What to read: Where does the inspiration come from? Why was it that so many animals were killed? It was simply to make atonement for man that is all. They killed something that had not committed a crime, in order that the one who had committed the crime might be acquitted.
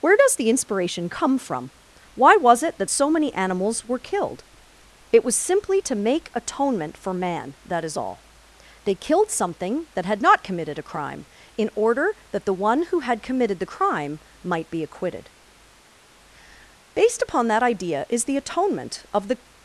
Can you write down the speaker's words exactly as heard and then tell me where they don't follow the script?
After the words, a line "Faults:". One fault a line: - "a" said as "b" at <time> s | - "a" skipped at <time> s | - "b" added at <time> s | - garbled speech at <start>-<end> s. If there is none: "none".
Where does the inspiration come from? Why was it that so many animals were killed? It was simply to make atonement for man that is all. They killed something that had not committed a crime, in order that the one who had committed the crime might be acquitted. Based upon that idea is the atonement of the
Faults:
- "Based upon that idea is the atonement of the" added at 16.9 s